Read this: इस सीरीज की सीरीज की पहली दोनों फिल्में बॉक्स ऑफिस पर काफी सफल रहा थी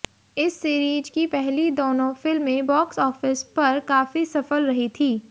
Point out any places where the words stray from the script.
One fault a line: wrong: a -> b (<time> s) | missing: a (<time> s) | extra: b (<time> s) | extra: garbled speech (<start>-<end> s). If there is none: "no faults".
missing: सीरीज की (1.2 s)
wrong: रहा -> रही (4.7 s)